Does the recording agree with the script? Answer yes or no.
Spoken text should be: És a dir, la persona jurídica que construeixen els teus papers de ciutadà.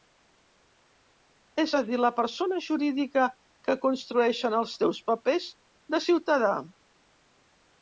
yes